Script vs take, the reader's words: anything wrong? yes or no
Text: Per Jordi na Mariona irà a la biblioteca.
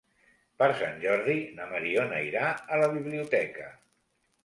yes